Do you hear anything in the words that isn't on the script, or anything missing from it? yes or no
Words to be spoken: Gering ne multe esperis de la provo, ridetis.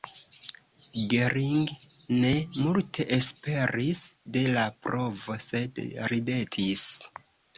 yes